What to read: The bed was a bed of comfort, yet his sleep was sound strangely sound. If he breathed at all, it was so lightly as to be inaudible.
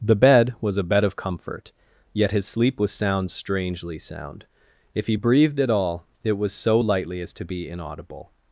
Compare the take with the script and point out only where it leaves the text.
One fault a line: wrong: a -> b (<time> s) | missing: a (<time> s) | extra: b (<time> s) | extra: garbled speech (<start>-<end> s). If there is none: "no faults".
no faults